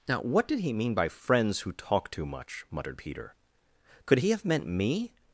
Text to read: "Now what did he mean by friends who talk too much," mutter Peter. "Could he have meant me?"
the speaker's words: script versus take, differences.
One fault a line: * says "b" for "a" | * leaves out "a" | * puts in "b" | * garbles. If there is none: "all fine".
* says "muttered" for "mutter"